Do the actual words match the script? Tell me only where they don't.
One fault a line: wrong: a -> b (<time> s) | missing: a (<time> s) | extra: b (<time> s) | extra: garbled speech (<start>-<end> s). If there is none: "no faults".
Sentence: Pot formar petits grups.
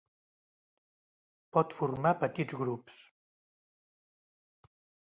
no faults